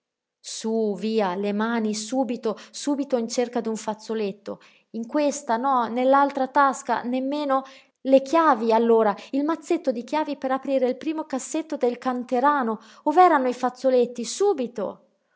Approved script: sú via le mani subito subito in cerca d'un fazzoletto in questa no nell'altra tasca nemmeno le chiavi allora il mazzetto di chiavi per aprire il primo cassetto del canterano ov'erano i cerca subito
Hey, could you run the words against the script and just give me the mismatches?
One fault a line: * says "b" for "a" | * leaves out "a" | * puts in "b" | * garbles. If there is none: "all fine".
* says "fazzoletti" for "cerca"